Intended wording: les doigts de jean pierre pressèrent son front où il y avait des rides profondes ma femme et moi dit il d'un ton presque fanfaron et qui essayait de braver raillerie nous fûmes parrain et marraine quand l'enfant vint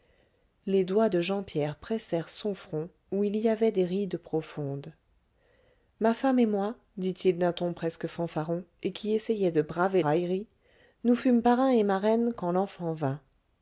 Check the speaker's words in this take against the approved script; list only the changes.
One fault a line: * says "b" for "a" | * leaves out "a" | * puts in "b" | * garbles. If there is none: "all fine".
all fine